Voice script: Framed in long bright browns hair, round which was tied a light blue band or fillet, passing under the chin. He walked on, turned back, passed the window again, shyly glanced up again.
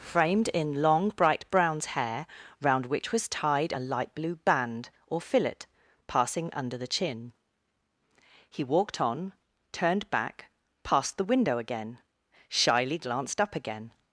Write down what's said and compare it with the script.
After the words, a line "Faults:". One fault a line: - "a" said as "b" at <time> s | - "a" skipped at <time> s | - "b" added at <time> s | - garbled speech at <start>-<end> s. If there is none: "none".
Framed in long bright browns hair, round which was tied a light blue band or fillet, passing under the chin. He walked on, turned back, passed the window again, shyly glanced up again.
Faults:
none